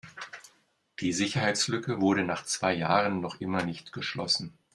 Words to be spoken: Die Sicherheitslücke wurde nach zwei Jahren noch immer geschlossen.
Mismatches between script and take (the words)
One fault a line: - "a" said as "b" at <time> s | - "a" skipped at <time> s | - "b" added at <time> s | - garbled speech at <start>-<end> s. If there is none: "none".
- "nicht" added at 3.6 s